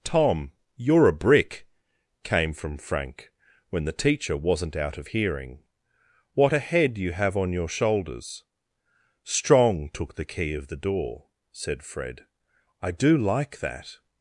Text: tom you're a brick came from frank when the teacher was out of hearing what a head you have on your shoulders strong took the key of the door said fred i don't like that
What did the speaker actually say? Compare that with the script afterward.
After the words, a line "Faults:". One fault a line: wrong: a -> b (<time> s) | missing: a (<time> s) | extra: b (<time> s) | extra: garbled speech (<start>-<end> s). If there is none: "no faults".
tom you're a brick came from frank when the teacher wasn't out of hearing what a head you have on your shoulders strong took the key of the door said fred i do like that
Faults:
wrong: was -> wasn't (4.3 s)
wrong: don't -> do (12.9 s)